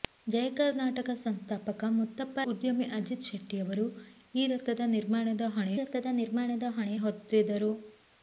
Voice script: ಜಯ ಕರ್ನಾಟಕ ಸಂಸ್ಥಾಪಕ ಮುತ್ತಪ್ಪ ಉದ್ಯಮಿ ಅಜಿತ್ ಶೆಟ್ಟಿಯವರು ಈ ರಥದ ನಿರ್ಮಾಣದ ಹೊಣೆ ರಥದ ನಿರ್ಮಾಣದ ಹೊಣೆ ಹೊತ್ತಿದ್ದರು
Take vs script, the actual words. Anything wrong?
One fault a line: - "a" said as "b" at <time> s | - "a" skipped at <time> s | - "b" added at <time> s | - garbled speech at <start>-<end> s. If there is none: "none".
none